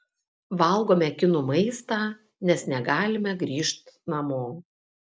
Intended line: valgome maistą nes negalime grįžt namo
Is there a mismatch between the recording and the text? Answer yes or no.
yes